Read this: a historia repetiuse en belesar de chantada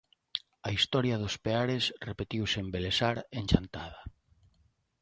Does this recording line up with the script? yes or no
no